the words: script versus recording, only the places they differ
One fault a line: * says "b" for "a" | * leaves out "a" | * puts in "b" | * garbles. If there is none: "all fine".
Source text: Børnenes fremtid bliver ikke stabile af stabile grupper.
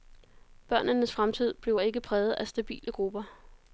* says "præget" for "stabile"